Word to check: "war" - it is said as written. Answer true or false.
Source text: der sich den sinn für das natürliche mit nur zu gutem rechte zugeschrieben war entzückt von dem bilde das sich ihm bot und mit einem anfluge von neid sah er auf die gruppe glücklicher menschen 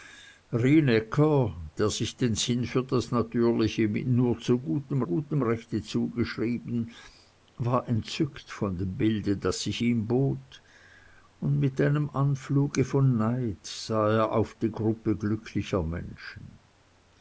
true